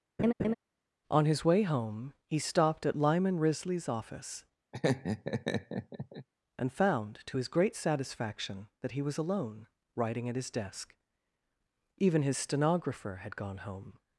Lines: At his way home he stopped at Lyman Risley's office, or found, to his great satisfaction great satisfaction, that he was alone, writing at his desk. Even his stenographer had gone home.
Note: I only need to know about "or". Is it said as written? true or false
false